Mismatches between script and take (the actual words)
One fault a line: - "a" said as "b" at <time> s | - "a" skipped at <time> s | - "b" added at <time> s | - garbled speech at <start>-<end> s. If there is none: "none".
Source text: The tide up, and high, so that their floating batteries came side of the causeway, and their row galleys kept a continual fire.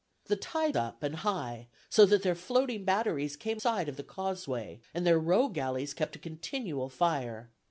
none